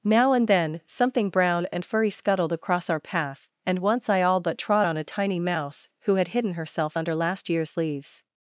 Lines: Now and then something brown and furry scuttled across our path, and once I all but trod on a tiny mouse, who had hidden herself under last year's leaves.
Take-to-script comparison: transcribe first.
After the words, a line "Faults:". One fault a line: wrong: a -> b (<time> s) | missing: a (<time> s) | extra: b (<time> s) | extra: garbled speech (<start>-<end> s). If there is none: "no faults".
Now and then something brown and furry scuttled across our path, and once I all but trod on a tiny mouse, who had hidden herself under last year's leaves.
Faults:
no faults